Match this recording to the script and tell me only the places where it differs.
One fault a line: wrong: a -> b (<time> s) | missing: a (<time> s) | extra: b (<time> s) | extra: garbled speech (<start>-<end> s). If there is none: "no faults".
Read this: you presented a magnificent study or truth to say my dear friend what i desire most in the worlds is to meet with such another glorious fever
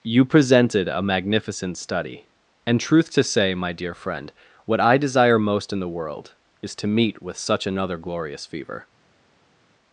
wrong: or -> and (2.6 s)
wrong: worlds -> world (5.9 s)